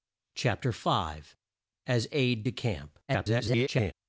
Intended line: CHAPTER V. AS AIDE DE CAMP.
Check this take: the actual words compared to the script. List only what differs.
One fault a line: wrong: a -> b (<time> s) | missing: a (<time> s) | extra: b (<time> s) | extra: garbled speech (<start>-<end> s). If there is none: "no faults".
extra: garbled speech (3.1-3.9 s)